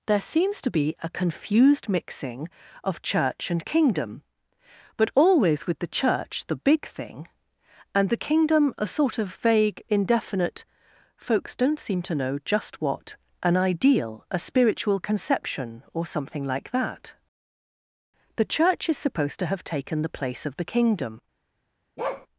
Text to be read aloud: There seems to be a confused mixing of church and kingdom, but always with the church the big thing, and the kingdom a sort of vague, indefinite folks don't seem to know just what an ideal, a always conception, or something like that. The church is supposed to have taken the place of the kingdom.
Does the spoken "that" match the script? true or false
true